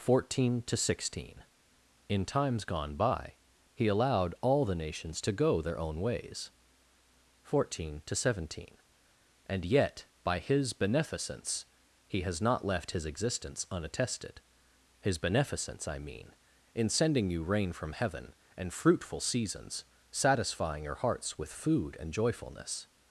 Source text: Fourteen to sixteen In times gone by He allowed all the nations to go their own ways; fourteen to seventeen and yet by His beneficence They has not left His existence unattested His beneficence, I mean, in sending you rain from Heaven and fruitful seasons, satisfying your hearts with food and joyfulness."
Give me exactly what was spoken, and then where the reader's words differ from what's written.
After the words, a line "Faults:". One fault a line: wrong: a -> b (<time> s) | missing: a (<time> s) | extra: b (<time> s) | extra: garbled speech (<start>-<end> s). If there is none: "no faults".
Fourteen to sixteen In times gone by He allowed all the nations to go their own ways; fourteen to seventeen and yet by His beneficence He has not left His existence unattested His beneficence, I mean, in sending you rain from Heaven and fruitful seasons, satisfying your hearts with food and joyfulness."
Faults:
wrong: They -> He (12.1 s)